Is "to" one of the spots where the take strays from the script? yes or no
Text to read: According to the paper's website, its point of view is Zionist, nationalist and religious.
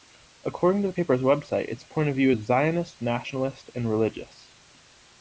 no